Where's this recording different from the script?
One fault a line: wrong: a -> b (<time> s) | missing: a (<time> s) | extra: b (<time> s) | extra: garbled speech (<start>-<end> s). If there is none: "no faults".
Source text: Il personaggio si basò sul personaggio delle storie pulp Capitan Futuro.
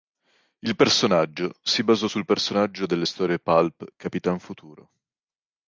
no faults